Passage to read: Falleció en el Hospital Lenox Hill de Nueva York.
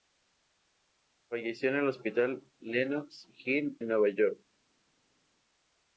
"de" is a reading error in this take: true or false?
true